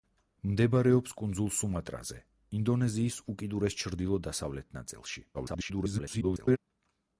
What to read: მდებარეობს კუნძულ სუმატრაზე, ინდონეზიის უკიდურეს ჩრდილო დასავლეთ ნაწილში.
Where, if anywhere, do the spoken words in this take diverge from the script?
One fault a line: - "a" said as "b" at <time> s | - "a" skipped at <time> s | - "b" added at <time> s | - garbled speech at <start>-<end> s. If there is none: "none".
- garbled speech at 5.3-6.6 s